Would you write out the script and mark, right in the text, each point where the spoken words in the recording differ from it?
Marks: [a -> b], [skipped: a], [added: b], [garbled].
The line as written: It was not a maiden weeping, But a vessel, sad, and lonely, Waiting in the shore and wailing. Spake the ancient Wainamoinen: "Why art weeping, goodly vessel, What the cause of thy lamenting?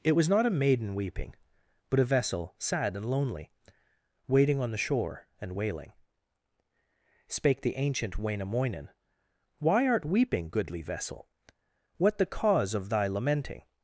It was not a maiden weeping, But a vessel, sad, and lonely, Waiting [in -> on] the shore and wailing. Spake the ancient Wainamoinen: "Why art weeping, goodly vessel, What the cause of thy lamenting?